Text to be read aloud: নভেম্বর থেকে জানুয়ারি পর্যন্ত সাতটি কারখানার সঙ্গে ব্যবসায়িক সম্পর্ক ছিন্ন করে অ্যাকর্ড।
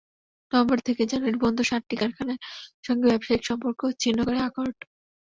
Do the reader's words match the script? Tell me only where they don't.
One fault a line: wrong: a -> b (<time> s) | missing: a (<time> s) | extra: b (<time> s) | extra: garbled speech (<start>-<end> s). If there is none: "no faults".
no faults